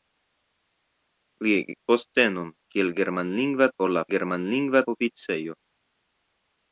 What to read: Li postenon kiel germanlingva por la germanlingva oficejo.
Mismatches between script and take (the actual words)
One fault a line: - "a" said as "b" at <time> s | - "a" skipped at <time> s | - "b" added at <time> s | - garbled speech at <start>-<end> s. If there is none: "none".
none